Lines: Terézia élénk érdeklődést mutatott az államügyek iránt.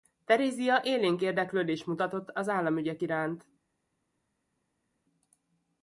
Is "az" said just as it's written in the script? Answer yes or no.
yes